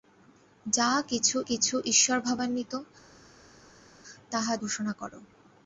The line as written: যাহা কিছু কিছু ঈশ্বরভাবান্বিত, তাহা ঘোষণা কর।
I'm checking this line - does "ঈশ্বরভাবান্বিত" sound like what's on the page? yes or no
yes